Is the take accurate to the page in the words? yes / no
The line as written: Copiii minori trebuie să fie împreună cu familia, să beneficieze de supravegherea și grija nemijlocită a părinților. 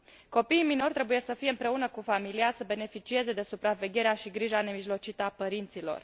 yes